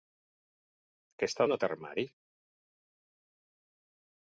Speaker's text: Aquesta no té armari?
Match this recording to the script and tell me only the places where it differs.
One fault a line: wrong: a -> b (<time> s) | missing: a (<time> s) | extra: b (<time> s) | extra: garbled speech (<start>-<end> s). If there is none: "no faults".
no faults